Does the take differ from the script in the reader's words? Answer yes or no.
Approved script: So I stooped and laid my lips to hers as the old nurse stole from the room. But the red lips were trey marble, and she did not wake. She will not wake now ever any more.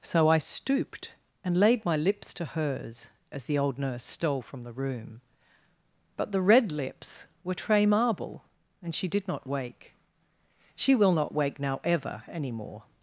no